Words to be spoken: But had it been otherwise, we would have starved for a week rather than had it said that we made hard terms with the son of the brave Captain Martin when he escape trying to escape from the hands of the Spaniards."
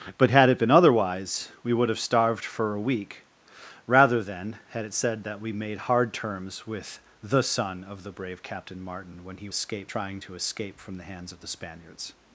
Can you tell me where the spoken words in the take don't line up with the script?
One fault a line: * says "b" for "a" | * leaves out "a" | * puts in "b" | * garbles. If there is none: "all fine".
all fine